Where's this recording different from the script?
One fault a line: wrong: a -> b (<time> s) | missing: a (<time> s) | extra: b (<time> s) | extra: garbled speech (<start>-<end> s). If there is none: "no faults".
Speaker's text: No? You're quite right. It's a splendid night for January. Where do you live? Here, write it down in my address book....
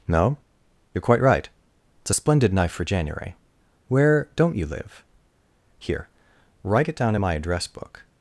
wrong: night -> knife (2.5 s)
wrong: do -> don't (4.3 s)